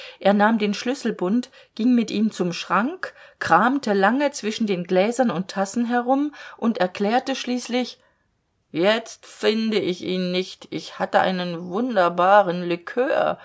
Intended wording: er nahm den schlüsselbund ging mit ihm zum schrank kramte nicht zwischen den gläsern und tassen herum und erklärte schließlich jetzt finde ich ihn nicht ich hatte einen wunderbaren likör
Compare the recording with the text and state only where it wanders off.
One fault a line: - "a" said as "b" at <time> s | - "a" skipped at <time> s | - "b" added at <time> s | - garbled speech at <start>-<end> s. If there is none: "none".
- "nicht" said as "lange" at 3.9 s